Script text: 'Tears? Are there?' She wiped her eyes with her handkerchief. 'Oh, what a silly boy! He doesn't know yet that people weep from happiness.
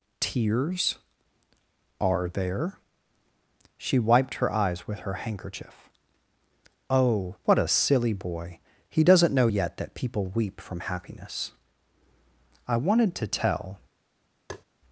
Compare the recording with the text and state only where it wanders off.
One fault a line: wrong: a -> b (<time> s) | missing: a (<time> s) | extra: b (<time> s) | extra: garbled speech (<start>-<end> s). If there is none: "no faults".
extra: I wanted to tell (12.7 s)